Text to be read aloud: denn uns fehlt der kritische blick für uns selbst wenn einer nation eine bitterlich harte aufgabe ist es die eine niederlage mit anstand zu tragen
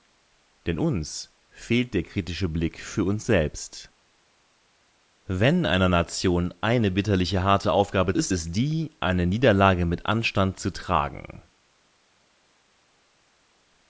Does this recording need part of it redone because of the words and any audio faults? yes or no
no